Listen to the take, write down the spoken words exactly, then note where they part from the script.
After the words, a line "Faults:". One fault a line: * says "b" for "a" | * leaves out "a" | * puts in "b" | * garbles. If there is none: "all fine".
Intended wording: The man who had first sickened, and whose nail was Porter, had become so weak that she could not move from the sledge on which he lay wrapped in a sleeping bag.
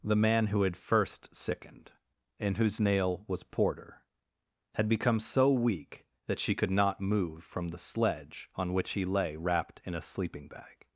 The man who had first sickened, and whose nail was Porter, had become so weak that she could not move from the sledge on which he lay wrapped in a sleeping bag.
Faults:
all fine